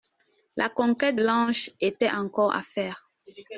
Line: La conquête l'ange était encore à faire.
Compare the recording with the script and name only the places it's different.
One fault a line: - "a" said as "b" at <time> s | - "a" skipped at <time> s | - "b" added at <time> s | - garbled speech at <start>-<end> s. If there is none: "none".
none